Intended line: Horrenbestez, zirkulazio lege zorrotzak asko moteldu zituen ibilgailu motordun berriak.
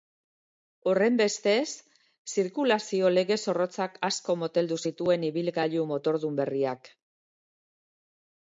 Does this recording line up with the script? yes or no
yes